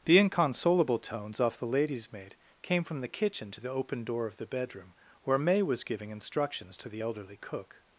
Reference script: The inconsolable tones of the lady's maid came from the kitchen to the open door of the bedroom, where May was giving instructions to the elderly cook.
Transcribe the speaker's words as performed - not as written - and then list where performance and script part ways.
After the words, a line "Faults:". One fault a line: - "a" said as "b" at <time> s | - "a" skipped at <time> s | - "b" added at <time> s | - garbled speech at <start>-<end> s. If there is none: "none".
The inconsolable tones off the lady's maid came from the kitchen to the open door of the bedroom, where May was giving instructions to the elderly cook.
Faults:
- "of" said as "off" at 1.4 s